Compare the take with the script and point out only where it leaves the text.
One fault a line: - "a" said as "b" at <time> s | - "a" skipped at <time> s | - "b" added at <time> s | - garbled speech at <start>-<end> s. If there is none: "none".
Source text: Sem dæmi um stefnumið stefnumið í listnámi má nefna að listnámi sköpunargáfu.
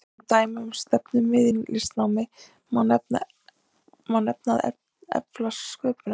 - "stefnumið" skipped at 1.5 s
- "listnámi" said as "efla" at 4.7 s